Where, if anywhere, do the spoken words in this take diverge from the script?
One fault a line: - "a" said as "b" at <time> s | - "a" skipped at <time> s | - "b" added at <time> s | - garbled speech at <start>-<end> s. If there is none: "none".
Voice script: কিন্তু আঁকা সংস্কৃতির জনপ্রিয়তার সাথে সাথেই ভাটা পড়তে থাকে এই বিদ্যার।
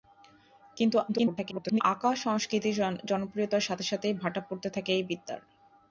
- garbled speech at 1.1-1.8 s